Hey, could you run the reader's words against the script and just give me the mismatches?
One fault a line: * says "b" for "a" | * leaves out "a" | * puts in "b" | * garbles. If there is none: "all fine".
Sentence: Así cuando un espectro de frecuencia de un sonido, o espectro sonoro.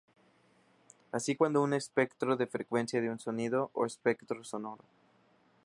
all fine